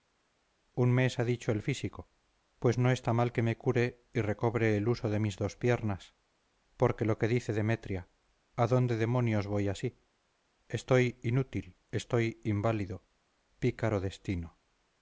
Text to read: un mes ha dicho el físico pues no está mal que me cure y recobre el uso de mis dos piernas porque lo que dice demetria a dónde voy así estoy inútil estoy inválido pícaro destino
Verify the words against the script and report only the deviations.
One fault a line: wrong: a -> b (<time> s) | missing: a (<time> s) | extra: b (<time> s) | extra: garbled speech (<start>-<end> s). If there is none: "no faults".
extra: demonios (9.0 s)